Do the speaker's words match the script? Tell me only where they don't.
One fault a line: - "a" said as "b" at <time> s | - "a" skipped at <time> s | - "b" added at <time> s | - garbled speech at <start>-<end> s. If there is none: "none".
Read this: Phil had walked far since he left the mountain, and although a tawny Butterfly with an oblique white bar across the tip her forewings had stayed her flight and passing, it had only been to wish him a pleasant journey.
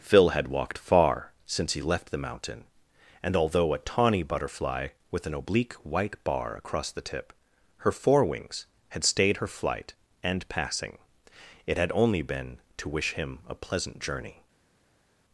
none